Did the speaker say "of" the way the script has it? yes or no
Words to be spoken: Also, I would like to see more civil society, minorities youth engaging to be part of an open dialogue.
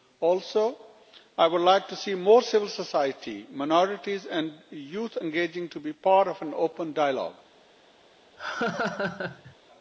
yes